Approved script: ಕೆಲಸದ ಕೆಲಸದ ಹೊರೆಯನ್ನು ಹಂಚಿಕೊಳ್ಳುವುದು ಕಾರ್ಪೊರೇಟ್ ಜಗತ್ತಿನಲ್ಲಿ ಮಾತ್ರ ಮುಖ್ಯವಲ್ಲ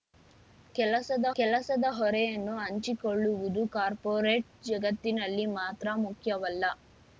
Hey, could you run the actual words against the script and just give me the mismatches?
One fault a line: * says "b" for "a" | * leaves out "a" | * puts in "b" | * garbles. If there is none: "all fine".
all fine